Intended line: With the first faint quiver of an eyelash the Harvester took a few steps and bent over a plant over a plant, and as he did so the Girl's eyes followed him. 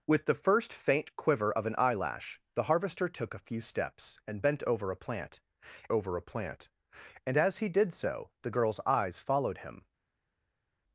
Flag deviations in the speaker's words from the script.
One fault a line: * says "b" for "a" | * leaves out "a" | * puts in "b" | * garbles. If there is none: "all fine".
all fine